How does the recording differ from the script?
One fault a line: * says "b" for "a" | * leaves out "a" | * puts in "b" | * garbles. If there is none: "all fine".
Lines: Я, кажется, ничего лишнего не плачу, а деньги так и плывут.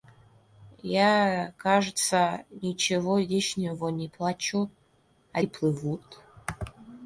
* leaves out "деньги так"